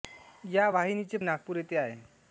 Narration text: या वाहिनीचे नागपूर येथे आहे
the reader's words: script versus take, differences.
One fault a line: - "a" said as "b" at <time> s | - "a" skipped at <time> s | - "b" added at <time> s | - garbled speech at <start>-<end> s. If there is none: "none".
none